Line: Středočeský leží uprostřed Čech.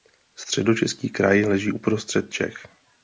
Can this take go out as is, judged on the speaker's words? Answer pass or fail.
fail